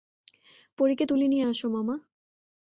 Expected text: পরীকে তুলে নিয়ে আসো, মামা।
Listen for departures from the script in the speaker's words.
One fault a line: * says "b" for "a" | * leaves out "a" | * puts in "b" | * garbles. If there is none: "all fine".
all fine